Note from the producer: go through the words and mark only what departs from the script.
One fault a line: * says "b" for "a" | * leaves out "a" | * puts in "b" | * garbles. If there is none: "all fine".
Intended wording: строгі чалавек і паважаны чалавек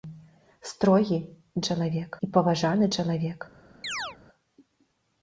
all fine